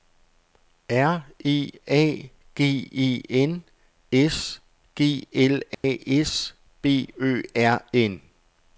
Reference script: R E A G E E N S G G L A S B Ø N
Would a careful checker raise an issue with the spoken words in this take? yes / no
yes